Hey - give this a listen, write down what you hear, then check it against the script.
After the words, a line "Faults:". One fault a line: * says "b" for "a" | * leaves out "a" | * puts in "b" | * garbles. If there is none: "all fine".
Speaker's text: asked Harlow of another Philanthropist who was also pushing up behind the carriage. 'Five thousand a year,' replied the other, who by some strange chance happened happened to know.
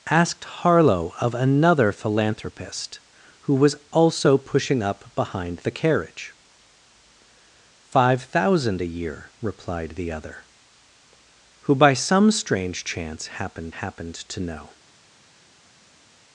asked Harlow of another Philanthropist who was also pushing up behind the carriage. 'Five thousand a year,' replied the other, who by some strange chance happened happened to know.
Faults:
all fine